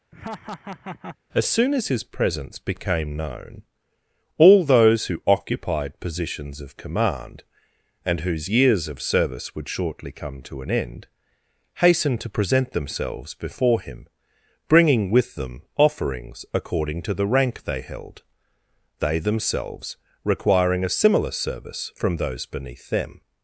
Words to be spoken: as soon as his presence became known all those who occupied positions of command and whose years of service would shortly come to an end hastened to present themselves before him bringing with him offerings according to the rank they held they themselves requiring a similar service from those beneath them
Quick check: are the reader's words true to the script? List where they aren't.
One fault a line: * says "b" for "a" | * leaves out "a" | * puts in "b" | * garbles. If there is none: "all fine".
* says "them" for "him"